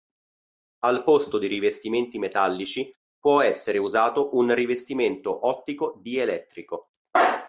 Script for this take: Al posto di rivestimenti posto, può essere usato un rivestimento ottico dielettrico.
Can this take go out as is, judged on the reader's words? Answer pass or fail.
fail